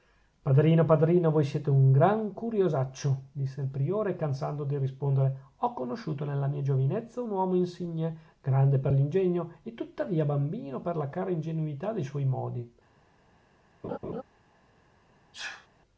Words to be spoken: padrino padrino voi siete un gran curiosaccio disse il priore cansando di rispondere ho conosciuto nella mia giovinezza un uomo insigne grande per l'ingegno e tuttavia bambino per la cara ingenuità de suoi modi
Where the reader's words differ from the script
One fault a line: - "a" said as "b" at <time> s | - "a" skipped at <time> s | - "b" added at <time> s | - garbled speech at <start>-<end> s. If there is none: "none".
none